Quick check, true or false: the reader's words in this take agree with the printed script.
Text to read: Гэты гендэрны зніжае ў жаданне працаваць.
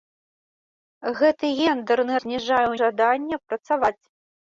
true